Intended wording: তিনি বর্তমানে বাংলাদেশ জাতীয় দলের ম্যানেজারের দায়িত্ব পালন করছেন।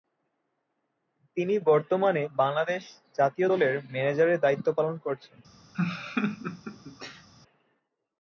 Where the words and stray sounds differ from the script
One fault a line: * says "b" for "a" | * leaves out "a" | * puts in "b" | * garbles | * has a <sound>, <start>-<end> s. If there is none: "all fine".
* has a laugh, 5.7-7.3 s